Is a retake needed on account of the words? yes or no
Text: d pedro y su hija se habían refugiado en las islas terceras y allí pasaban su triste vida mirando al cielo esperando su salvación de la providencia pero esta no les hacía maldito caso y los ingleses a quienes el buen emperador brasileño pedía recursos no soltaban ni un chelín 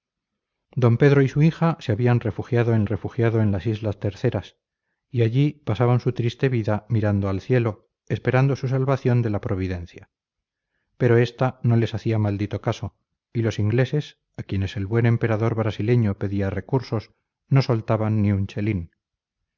yes